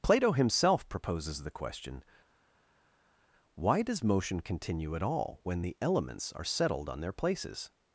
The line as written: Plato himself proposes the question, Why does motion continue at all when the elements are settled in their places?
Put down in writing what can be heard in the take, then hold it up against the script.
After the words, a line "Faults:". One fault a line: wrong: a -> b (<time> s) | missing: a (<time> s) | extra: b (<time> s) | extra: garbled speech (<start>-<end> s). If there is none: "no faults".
Plato himself proposes the question, Why does motion continue at all when the elements are settled on their places?
Faults:
wrong: in -> on (6.9 s)